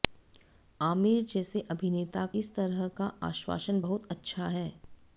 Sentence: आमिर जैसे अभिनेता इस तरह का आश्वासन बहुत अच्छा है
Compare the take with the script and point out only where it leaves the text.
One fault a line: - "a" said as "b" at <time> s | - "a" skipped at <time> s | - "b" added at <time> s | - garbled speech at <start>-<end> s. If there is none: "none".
none